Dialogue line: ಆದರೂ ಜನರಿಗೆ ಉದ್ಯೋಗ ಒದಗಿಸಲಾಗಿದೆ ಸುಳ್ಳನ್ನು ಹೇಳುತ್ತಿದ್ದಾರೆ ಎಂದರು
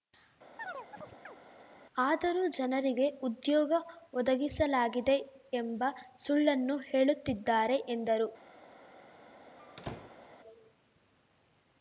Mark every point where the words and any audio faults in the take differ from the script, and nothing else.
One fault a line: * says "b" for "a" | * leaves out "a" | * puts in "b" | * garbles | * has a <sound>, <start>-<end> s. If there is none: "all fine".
* has a chirp, 0.6-1.4 s
* puts in "ಎಂಬ"
* has a squeak, 9.6-10.3 s